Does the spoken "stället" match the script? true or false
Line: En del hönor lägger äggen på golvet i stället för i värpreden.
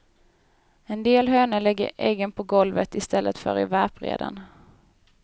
true